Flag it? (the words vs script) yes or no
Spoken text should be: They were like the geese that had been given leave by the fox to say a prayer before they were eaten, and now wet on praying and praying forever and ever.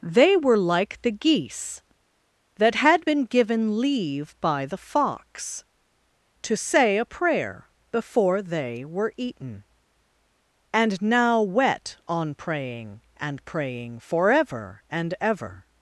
no